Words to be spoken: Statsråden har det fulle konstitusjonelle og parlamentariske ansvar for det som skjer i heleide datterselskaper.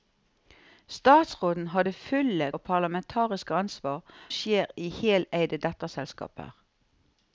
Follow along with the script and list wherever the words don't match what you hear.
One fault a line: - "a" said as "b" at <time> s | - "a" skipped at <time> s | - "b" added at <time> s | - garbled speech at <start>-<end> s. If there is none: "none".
- "konstitusjonelle" skipped at 2.5 s
- "for det som" skipped at 4.0 s